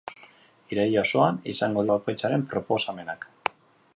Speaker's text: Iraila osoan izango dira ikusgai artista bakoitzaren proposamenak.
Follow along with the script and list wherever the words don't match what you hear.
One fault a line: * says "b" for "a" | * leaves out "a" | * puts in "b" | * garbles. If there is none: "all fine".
* leaves out "dira ikusgai artista"